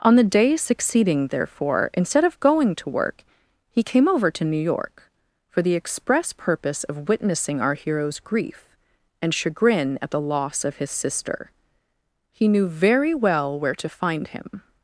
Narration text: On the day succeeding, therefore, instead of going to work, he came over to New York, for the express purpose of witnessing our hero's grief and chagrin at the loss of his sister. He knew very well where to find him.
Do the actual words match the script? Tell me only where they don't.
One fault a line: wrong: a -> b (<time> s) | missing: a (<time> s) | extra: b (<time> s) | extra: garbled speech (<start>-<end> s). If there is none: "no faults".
no faults